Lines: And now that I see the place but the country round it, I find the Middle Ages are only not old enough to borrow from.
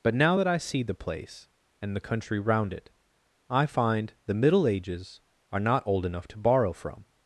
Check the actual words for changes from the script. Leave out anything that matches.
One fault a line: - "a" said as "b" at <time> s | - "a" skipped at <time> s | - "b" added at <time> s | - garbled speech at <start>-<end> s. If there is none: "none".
- "And" said as "But" at 0.0 s
- "but" said as "and" at 1.8 s
- "only" skipped at 5.6 s